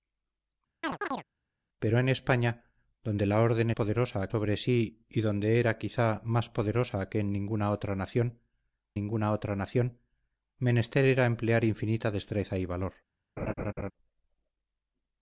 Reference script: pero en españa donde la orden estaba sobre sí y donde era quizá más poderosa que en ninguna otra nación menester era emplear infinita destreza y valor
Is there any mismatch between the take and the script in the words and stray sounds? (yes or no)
yes